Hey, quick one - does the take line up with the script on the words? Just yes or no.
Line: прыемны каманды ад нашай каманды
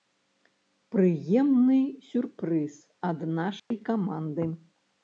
no